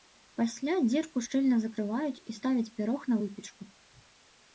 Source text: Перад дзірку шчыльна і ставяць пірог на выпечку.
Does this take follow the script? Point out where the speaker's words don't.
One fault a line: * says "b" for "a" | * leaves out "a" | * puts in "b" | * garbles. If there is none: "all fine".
* says "Пасля" for "Перад"
* puts in "закрываюць"